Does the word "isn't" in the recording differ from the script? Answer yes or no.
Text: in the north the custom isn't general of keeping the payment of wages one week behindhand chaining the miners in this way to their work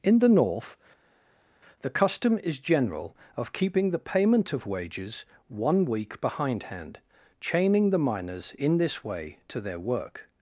yes